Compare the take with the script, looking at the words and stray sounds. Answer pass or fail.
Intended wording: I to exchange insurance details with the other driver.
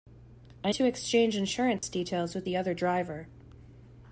fail